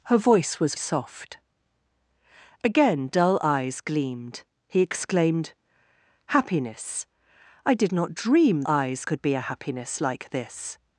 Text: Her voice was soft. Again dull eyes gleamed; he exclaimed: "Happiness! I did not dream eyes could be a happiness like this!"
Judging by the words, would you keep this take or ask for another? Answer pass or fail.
pass